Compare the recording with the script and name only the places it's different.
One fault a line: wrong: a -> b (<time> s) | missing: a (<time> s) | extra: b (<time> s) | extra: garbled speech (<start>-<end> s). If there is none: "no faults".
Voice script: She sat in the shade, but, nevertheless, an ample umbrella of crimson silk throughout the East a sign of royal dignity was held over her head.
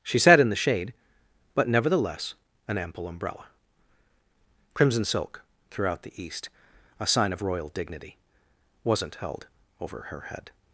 missing: of (3.5 s)
wrong: was -> wasn't (8.8 s)